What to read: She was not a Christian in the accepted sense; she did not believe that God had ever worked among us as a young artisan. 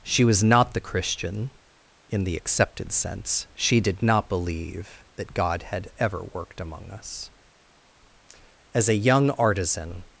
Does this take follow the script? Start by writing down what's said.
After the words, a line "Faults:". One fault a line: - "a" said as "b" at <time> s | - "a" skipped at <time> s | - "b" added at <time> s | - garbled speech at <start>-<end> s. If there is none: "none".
She was not the Christian in the accepted sense; she did not believe that God had ever worked among us as a young artisan.
Faults:
- "a" said as "the" at 0.7 s